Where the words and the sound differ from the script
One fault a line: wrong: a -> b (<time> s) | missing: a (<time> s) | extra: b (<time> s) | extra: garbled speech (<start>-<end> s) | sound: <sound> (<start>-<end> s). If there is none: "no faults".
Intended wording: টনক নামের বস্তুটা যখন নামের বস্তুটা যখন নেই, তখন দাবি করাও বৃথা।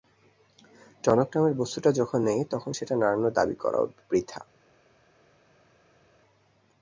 wrong: নামের বস্তুটা যখন নেই তখন -> নেই তখন সেটা নাড়ানোর (2.2 s)